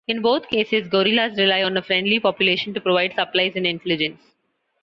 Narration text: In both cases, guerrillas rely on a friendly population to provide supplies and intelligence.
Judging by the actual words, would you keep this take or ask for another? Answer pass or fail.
pass